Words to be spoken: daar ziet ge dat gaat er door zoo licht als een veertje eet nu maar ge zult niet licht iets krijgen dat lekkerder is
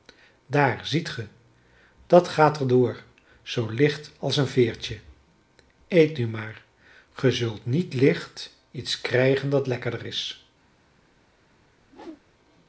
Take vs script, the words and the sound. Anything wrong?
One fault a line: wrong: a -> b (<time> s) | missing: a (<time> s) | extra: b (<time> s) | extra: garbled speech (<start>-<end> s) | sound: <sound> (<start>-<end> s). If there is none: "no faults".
sound: whoosh (11.8-12.2 s)